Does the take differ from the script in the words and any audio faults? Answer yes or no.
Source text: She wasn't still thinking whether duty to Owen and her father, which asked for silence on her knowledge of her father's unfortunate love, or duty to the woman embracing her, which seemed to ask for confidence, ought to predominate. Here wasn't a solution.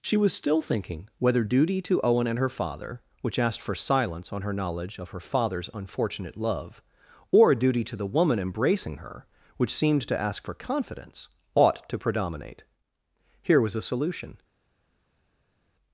yes